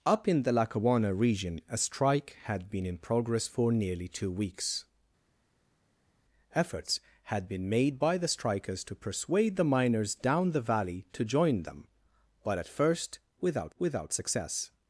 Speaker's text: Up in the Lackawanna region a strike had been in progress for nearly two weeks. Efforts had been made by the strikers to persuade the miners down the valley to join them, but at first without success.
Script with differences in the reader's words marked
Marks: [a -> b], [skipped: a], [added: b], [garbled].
Up in the Lackawanna region a strike had been in progress for nearly two weeks. Efforts had been made by the strikers to persuade the miners down the valley to join them, but at first without [added: without] success.